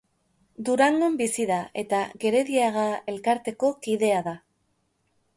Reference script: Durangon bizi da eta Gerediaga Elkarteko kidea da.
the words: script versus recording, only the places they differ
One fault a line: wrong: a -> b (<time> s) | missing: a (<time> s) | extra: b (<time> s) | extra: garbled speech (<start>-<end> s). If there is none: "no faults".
no faults